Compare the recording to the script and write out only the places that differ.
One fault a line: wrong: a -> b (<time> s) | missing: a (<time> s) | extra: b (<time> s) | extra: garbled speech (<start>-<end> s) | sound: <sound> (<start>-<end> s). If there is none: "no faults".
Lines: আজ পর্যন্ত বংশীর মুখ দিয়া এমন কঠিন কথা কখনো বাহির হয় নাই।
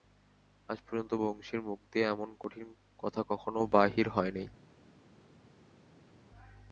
no faults